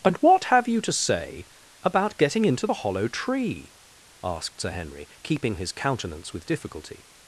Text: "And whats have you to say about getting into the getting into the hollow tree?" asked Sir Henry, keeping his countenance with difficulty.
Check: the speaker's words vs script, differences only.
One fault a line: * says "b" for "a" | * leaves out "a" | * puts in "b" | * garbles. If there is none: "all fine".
* says "what" for "whats"
* leaves out "getting into the"